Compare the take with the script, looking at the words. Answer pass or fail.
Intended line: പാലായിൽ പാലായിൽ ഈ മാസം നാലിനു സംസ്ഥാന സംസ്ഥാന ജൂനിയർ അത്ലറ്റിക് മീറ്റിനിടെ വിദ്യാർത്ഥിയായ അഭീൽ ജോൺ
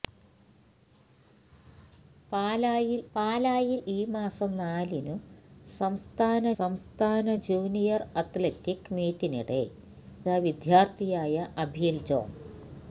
pass